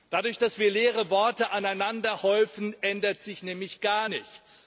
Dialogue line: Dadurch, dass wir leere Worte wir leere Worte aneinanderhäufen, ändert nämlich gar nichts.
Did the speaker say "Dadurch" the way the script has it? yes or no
yes